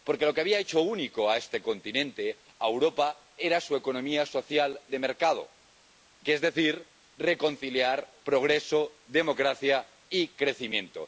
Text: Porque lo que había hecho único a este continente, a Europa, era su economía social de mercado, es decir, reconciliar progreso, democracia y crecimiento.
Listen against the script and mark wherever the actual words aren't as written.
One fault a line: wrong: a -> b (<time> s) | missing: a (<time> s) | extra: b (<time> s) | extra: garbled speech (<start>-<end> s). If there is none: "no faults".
no faults